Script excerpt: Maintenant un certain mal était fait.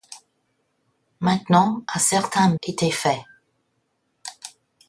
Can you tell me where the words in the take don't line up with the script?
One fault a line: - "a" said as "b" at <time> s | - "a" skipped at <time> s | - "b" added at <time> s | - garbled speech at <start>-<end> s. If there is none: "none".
- "mal" skipped at 2.5 s